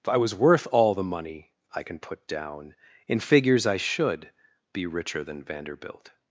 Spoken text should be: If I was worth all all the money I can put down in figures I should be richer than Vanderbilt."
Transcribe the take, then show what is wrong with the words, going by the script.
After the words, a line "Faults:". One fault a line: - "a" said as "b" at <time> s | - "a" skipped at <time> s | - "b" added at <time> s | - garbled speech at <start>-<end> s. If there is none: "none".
If I was worth all the money I can put down in figures I should be richer than Vanderbilt."
Faults:
- "all" skipped at 0.9 s